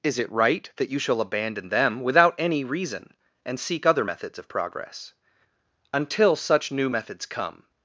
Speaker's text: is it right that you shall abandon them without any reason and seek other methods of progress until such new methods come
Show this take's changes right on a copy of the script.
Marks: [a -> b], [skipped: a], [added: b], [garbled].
is it right that you shall abandon them without any reason and seek other methods of progress until such new methods come